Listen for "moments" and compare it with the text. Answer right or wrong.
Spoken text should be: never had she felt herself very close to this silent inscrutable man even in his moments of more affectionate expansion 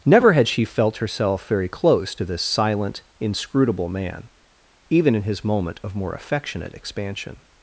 wrong